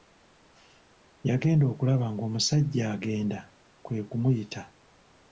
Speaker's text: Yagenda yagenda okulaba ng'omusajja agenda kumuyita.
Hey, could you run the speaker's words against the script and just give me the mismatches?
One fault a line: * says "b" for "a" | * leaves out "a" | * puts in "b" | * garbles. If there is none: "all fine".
* leaves out "yagenda"
* puts in "kwe"